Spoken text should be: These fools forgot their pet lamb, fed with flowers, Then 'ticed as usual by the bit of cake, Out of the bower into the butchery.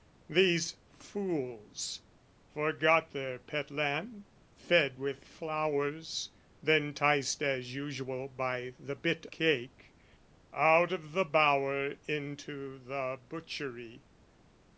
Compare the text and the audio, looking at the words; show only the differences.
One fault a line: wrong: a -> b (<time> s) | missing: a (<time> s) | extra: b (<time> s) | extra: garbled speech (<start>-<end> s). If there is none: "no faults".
missing: of (9.3 s)